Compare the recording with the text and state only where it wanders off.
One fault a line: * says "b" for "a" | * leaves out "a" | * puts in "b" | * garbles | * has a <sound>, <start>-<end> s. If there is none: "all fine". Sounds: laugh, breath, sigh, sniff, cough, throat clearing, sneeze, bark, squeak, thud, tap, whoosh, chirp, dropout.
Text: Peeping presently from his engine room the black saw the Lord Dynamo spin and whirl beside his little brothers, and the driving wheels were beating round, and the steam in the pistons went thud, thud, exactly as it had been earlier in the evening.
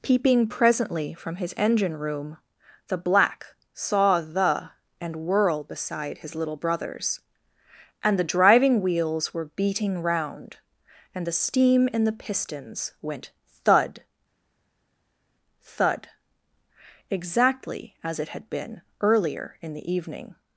* leaves out "Lord Dynamo spin"